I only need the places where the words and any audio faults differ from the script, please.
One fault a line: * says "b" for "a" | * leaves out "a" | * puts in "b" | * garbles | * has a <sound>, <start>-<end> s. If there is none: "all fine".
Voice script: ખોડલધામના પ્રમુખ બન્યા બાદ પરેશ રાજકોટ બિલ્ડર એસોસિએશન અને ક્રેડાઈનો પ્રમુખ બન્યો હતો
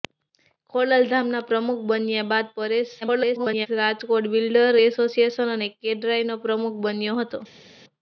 * garbles